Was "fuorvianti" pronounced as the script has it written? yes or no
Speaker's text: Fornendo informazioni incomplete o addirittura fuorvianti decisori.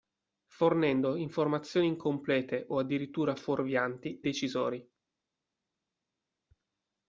yes